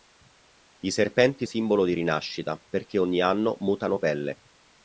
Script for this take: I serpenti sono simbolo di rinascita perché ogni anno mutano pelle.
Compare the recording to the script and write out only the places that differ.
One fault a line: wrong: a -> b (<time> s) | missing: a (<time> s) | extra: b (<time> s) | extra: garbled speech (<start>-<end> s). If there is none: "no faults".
missing: sono (1.4 s)